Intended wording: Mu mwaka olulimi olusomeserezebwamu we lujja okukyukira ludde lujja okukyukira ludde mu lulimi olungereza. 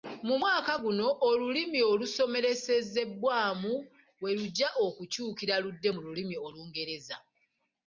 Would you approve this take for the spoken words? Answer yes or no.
no